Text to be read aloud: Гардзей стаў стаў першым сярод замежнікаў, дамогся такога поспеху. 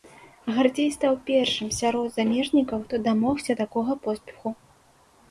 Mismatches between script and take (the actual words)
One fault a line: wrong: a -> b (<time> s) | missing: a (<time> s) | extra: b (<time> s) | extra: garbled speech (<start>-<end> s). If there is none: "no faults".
missing: стаў (1.2 s)
extra: хто (2.9 s)